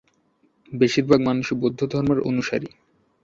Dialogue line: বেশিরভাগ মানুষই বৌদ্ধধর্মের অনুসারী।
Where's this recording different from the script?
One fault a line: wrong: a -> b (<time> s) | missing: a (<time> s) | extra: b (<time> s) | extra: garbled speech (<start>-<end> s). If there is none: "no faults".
no faults